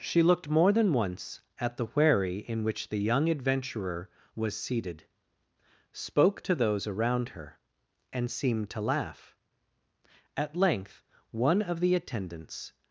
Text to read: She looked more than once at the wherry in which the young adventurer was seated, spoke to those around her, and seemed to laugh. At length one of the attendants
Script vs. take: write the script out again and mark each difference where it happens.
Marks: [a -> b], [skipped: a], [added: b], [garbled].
She looked more than once at the wherry in which the young adventurer was seated, spoke to those around her, and seemed to laugh. At length one of the attendants